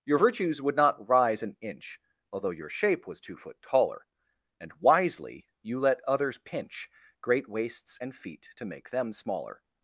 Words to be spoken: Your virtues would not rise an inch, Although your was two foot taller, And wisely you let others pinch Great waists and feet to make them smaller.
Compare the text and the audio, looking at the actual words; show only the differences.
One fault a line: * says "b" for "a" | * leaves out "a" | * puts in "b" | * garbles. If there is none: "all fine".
* puts in "shape"